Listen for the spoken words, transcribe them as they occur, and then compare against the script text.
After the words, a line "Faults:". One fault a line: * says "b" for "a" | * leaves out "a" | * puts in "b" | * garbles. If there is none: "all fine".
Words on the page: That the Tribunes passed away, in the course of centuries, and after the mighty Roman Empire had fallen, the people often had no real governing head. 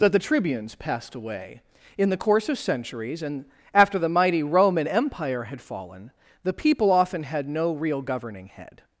That the Tribunes passed away, in the course of centuries, and after the mighty Roman Empire had fallen, the people often had no real governing head.
Faults:
all fine